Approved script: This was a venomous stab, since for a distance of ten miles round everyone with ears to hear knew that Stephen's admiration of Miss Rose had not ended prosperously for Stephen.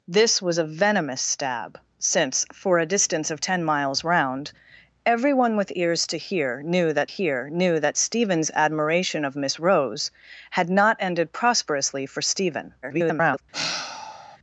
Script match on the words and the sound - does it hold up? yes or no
no